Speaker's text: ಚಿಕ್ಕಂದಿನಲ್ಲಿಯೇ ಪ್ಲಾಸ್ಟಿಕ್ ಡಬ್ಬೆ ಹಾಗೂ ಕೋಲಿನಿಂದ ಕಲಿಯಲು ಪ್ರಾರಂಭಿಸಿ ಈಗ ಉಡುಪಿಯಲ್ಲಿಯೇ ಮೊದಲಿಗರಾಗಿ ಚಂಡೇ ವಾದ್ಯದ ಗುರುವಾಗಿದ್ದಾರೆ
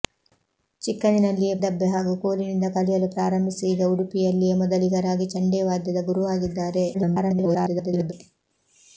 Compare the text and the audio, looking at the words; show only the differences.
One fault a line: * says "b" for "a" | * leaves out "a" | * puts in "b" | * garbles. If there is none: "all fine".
* leaves out "ಪ್ಲಾಸ್ಟಿಕ್"
* garbles